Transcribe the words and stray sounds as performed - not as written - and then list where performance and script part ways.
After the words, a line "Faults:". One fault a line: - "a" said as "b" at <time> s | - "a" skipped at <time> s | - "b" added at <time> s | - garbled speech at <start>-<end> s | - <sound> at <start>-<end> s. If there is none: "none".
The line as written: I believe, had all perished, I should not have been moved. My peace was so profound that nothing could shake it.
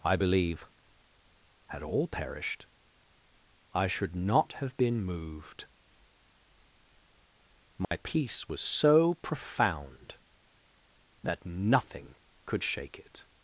I believe, had all perished, I should not have been moved. My peace was so profound that nothing could shake it.
Faults:
- dropout at 7.8-7.9 s